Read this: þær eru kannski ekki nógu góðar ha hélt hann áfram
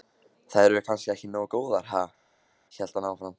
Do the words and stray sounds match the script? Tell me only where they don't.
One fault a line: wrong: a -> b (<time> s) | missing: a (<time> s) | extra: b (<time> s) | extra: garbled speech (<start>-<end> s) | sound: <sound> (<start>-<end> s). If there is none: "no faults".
no faults